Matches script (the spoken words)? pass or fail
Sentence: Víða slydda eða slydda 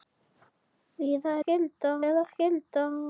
pass